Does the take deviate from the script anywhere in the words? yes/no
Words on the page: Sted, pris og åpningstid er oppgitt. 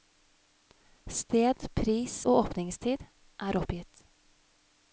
no